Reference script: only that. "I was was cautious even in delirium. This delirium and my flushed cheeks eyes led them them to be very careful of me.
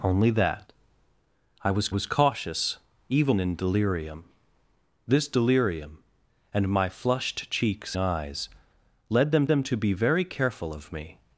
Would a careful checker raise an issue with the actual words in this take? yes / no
no